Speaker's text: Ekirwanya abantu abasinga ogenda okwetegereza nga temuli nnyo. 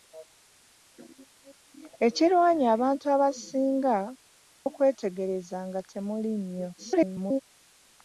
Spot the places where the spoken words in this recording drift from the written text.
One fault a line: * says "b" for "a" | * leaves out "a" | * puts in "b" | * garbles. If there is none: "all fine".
* leaves out "ogenda"
* garbles